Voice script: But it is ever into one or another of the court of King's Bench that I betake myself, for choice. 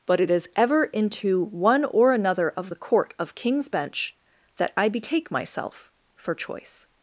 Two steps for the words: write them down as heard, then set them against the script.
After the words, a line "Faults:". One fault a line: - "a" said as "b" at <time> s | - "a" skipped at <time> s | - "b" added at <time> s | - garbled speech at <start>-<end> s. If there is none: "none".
But it is ever into one or another of the court of King's Bench that I betake myself, for choice.
Faults:
none